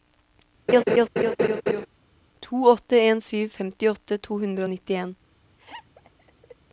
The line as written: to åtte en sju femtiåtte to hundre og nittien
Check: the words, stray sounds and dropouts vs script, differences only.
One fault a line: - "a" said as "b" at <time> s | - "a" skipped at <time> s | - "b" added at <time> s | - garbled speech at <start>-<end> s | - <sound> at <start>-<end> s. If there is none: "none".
- laugh at 0.7-1.9 s
- laugh at 5.6-6.6 s